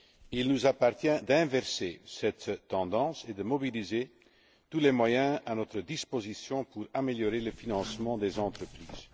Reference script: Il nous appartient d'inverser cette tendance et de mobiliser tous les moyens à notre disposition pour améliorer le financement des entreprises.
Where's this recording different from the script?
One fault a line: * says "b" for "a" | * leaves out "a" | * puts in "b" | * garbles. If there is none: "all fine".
all fine